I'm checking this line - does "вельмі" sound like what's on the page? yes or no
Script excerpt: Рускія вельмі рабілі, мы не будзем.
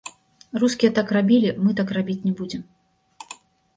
no